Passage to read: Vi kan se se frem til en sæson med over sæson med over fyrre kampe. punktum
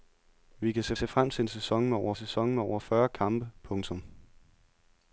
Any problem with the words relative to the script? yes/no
no